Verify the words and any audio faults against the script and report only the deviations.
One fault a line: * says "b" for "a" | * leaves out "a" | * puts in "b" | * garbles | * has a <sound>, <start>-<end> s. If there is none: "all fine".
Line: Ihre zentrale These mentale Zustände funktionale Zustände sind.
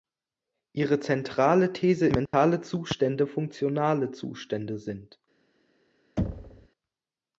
* has a dropout, 2.3-2.3 s
* has a thud, 6.2-6.7 s